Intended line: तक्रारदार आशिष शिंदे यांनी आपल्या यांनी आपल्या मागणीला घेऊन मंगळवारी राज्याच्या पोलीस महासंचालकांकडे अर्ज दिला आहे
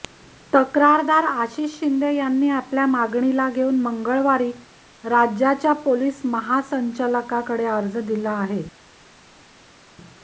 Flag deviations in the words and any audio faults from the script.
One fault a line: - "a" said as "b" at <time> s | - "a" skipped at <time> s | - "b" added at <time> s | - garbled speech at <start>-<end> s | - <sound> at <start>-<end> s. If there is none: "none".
- "यांनी आपल्या" skipped at 2.9 s